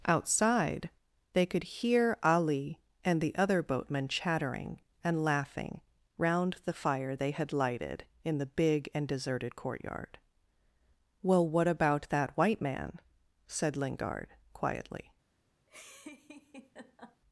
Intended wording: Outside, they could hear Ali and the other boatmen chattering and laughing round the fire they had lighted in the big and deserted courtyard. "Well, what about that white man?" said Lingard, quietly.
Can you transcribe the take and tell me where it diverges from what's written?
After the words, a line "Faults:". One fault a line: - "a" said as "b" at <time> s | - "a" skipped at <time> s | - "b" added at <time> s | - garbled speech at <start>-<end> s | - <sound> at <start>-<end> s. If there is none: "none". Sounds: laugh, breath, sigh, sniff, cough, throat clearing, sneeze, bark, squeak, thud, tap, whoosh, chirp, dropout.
Outside, they could hear Ali and the other boatmen chattering and laughing round the fire they had lighted in the big and deserted courtyard. "Well, what about that white man?" said Lingard, quietly.
Faults:
- laugh at 15.7-17.2 s